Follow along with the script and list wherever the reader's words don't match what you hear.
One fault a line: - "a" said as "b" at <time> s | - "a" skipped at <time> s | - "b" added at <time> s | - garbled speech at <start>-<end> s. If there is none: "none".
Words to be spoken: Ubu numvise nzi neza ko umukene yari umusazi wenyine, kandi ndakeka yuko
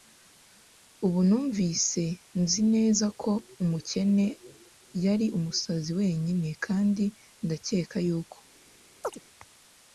none